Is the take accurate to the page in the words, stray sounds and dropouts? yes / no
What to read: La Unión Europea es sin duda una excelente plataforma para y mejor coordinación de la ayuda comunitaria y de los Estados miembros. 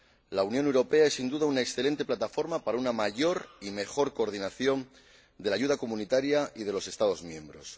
no